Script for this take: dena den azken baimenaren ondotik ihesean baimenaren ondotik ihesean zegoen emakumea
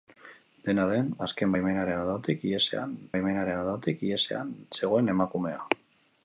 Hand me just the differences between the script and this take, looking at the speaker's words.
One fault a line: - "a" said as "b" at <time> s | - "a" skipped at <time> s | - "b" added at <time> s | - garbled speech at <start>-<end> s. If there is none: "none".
none